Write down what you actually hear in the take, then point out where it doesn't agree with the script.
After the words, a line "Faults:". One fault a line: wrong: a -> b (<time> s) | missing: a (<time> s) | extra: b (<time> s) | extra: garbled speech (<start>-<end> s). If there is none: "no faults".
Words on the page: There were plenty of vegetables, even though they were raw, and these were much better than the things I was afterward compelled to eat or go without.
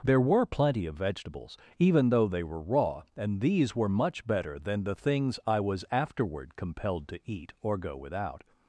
There were plenty of vegetables, even though they were raw, and these were much better than the things I was afterward compelled to eat or go without.
Faults:
no faults